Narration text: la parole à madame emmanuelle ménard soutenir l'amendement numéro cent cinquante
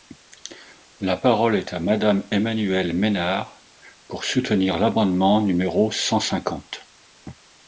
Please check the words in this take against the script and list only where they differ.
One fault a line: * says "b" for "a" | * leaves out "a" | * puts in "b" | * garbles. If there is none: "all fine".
* puts in "est"
* puts in "pour"